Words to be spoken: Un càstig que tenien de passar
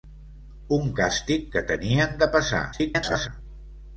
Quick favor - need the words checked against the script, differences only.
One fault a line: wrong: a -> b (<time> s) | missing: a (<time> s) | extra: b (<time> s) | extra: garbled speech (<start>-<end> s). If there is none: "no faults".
extra: garbled speech (2.7-3.3 s)